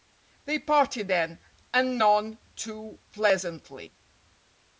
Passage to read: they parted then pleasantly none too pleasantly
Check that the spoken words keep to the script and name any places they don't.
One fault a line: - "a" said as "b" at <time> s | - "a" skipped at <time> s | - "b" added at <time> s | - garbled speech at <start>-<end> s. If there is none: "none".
- "pleasantly" said as "and" at 1.7 s